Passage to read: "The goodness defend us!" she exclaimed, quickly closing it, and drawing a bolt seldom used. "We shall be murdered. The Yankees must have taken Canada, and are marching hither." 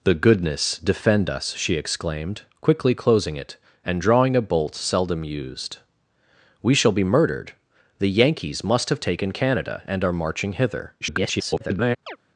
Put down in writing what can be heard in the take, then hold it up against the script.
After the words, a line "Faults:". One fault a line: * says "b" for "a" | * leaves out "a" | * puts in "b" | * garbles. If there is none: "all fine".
"The goodness defend us!" she exclaimed, quickly closing it, and drawing a bolt seldom used. "We shall be murdered. The Yankees must have taken Canada, and are marching hither." [garbled]
Faults:
* garbles